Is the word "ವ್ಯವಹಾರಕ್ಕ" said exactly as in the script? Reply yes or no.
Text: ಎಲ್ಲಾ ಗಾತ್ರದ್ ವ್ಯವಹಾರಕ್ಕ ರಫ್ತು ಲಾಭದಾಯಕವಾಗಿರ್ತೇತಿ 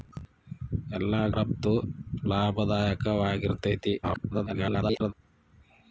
no